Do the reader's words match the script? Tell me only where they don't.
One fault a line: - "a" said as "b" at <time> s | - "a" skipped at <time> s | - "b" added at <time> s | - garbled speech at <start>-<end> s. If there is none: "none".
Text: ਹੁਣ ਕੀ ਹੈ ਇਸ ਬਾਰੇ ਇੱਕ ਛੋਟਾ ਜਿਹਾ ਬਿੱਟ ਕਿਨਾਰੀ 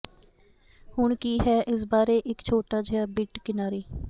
none